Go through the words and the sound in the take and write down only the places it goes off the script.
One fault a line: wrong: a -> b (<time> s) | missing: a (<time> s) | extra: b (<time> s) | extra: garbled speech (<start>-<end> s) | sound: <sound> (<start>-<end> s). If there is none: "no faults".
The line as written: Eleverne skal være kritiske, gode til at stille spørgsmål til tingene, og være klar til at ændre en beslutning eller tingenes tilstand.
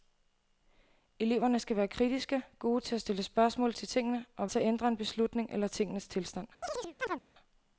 missing: være klar (4.5 s)
sound: chirp (6.6-7.2 s)